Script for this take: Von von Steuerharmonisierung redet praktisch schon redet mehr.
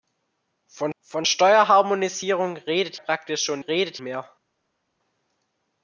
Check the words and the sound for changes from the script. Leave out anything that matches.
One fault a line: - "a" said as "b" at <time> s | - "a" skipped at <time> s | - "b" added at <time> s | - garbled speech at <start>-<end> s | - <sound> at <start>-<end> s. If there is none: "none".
none